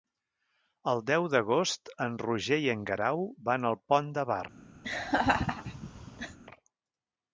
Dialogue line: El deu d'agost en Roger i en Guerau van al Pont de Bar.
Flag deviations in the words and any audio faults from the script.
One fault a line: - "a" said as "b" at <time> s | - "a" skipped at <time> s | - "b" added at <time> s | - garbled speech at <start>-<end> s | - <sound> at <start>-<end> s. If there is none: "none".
- laugh at 4.8-6.4 s